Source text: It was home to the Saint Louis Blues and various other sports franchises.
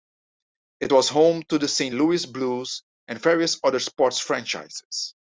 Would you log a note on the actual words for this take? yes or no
no